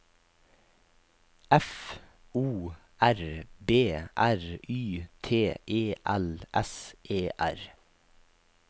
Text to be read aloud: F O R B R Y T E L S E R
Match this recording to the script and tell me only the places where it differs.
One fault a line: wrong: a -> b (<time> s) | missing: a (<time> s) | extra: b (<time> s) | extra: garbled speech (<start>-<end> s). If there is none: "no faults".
no faults